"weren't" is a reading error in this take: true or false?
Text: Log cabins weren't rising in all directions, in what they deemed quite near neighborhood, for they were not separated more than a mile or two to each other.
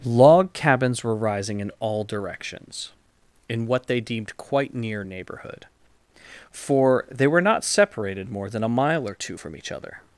true